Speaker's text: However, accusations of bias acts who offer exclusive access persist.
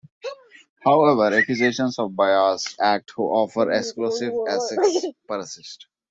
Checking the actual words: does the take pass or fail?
pass